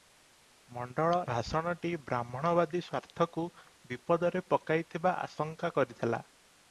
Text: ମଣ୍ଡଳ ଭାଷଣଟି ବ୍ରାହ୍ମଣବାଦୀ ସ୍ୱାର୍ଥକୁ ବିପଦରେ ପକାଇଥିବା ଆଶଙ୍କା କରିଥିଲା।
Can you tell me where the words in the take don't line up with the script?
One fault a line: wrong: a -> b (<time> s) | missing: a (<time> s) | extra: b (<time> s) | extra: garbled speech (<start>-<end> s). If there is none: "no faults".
no faults